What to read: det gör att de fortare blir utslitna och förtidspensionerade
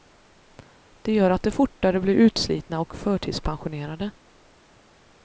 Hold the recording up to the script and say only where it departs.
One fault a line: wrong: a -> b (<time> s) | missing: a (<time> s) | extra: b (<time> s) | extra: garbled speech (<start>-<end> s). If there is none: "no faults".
no faults